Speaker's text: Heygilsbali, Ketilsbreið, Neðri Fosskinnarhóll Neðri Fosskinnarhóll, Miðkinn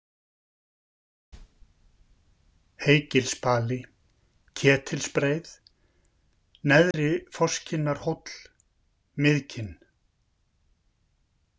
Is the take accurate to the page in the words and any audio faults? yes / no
no